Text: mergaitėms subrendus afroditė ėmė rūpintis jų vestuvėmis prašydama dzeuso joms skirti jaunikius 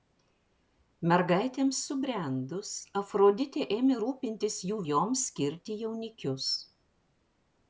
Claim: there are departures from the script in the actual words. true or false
true